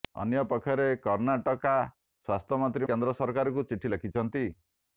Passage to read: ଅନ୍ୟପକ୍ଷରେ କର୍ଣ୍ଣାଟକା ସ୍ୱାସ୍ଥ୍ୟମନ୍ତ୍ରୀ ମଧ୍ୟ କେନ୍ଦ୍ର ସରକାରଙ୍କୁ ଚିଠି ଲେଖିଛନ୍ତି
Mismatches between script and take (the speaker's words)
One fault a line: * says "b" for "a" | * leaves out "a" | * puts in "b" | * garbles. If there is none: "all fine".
* leaves out "ମଧ୍ୟ"